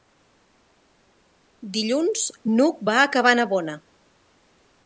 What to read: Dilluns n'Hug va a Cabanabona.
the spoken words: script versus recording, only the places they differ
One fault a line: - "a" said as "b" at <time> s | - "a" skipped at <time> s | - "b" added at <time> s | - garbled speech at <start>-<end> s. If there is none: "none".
none